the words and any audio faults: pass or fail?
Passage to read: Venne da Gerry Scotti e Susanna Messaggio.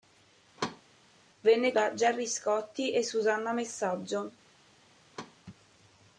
fail